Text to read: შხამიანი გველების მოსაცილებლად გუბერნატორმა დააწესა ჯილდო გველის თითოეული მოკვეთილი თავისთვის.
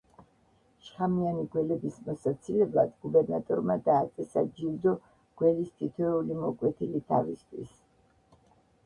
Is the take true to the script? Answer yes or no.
yes